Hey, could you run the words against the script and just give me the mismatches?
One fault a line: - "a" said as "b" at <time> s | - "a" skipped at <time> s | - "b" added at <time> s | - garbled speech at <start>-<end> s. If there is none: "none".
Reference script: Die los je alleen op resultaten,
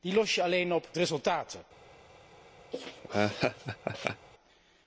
none